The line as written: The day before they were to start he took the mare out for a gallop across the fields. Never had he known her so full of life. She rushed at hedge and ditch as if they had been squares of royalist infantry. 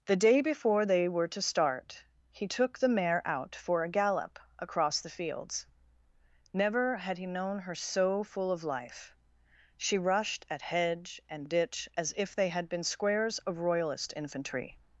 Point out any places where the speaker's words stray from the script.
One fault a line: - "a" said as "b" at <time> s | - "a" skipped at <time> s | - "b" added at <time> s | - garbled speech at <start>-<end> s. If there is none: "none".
none